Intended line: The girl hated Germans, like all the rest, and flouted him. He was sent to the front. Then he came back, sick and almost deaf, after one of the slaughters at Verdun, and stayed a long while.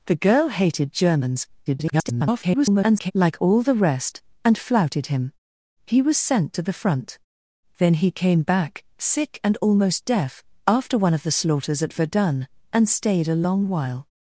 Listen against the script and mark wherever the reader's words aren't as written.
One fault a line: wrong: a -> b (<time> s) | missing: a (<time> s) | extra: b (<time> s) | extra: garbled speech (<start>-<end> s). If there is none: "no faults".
extra: garbled speech (1.7-3.1 s)